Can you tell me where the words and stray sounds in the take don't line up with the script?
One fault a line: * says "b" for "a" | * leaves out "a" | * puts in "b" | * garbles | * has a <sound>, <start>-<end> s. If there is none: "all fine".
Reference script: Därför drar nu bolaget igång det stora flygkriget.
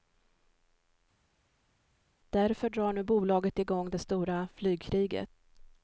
all fine